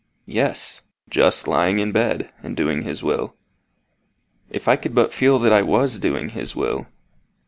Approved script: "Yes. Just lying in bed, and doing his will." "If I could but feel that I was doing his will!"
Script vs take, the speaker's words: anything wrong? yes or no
no